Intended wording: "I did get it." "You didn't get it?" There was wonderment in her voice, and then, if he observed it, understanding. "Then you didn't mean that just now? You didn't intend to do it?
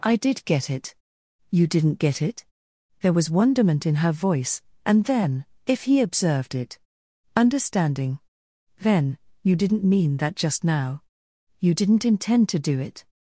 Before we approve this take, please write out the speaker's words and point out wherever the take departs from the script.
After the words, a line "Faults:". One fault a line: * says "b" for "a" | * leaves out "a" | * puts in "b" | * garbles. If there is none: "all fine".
"I did get it." "You didn't get it?" There was wonderment in her voice, and then, if he observed it, understanding. "Then you didn't mean that just now? You didn't intend to do it?
Faults:
all fine